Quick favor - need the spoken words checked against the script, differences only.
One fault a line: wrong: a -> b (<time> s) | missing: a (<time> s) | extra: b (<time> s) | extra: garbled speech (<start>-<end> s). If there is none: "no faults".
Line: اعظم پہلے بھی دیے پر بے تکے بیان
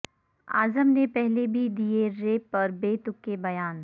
extra: نے (0.9 s)
extra: ریپ (2.2 s)